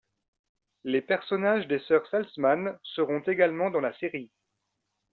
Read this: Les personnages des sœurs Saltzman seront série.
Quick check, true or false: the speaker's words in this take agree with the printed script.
false